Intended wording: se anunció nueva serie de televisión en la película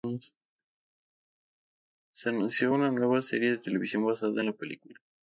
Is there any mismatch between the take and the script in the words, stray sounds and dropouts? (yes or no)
yes